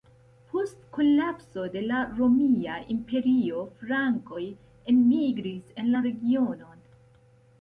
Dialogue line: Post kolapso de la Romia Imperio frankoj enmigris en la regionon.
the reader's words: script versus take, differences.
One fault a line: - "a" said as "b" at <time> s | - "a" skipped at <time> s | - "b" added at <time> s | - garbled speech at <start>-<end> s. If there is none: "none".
none